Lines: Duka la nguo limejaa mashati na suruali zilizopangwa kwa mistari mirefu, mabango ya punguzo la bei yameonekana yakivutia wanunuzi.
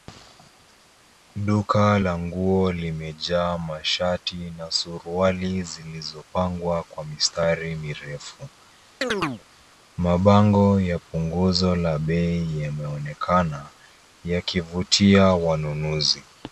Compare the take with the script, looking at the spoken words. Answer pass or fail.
pass